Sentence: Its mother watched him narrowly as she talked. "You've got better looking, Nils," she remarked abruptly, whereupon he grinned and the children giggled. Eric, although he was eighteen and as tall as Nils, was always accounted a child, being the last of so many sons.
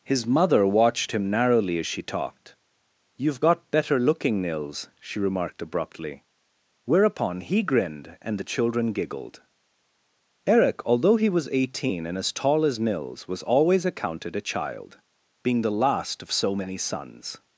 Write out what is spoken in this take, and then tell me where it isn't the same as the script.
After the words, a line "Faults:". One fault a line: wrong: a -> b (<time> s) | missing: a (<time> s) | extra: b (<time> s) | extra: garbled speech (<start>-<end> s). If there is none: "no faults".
His mother watched him narrowly as she talked. "You've got better looking, Nils," she remarked abruptly, whereupon he grinned and the children giggled. Eric, although he was eighteen and as tall as Nils, was always accounted a child, being the last of so many sons.
Faults:
wrong: Its -> His (0.0 s)